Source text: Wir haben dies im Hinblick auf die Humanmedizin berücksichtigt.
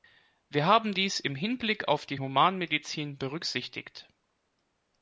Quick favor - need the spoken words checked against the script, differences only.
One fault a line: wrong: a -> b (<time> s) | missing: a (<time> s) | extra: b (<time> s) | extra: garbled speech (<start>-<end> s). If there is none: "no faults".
no faults